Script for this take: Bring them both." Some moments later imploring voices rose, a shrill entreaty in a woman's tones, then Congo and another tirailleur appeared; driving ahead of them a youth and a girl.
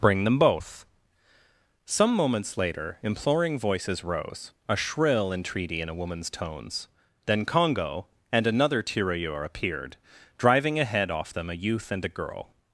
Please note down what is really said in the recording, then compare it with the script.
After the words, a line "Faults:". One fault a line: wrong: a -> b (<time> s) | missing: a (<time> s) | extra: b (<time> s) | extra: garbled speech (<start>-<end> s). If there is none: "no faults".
Bring them both." Some moments later imploring voices rose, a shrill entreaty in a woman's tones, then Congo and another tirailleur appeared; driving ahead off them a youth and a girl.
Faults:
wrong: of -> off (11.1 s)